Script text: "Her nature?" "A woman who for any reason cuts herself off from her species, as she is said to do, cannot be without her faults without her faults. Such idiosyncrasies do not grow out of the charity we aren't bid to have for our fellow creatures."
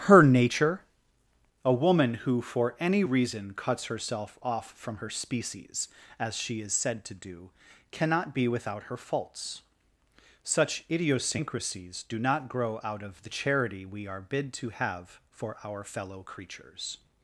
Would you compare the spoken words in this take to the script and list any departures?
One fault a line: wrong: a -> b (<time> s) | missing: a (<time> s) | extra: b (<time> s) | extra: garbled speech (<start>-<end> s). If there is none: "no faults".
missing: without her faults (9.6 s)
wrong: aren't -> are (14.0 s)